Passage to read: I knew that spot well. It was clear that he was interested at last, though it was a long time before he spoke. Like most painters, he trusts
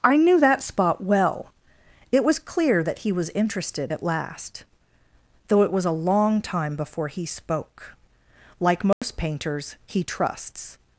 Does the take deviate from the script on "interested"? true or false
false